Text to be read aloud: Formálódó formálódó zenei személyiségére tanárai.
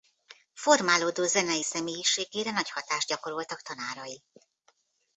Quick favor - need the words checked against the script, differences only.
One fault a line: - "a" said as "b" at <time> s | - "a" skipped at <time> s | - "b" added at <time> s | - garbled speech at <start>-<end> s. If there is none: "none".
- "formálódó" skipped at 1.2 s
- "nagy hatást gyakoroltak" added at 2.5 s